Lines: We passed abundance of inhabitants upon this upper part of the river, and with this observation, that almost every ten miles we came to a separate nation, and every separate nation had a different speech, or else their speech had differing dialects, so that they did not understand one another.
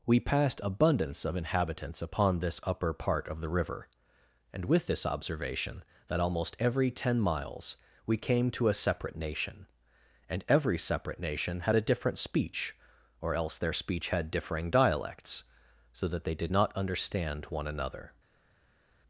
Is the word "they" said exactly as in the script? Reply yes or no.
yes